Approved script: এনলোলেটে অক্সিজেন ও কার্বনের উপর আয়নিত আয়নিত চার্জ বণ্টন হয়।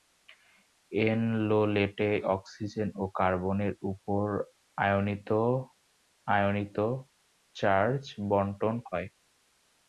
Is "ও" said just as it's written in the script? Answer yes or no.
yes